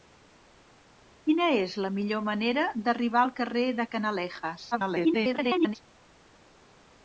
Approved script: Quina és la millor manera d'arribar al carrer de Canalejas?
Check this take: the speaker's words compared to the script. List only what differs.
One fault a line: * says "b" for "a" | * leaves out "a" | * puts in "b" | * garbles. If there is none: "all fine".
* garbles